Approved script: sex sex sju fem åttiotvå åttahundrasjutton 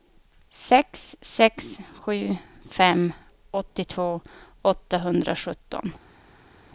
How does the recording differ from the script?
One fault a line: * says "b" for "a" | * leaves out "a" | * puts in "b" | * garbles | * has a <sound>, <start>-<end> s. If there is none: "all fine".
all fine